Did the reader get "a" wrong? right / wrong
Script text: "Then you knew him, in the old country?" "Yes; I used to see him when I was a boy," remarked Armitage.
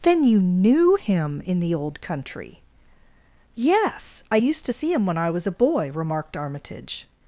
right